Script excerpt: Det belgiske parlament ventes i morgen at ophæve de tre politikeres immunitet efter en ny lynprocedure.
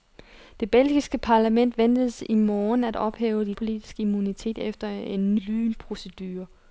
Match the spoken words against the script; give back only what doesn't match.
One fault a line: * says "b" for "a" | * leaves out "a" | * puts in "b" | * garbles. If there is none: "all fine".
* leaves out "tre"
* leaves out "ny"